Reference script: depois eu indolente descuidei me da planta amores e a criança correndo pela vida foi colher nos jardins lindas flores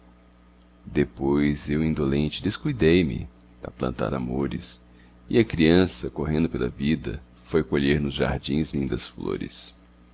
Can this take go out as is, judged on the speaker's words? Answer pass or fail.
pass